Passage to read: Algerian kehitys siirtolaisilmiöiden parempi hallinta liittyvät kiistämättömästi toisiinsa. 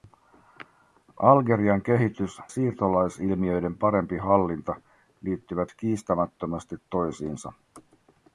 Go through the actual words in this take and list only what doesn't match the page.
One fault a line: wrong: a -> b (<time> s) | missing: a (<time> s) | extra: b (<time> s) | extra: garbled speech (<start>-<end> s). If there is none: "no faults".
no faults